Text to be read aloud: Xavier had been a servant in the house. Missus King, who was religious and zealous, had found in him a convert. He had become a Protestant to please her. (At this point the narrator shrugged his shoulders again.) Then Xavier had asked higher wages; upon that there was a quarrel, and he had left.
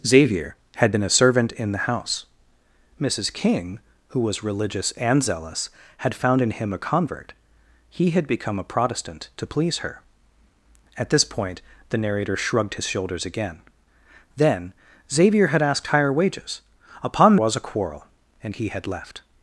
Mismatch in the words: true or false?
true